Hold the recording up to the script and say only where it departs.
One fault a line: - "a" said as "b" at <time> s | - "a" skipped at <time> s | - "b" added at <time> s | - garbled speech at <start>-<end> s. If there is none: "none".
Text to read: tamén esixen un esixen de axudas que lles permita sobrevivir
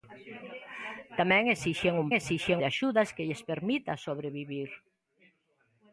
none